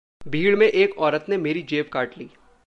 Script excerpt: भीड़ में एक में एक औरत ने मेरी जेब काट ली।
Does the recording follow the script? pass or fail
fail